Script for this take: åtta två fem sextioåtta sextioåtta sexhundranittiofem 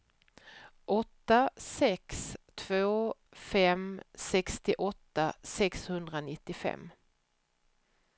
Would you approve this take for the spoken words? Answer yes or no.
no